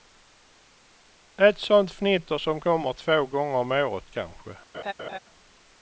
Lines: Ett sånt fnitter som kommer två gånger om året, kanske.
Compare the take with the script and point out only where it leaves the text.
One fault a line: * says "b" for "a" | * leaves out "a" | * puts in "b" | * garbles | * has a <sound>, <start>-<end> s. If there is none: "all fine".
* has a laugh, 4.7-5.2 s